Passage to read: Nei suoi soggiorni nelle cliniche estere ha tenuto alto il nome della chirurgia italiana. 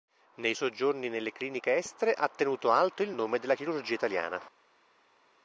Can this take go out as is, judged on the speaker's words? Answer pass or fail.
fail